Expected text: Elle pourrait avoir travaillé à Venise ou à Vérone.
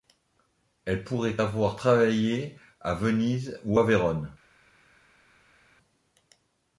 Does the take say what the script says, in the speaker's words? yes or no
yes